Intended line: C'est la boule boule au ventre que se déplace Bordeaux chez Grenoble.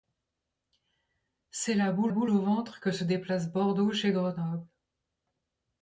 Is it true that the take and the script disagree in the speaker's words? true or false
false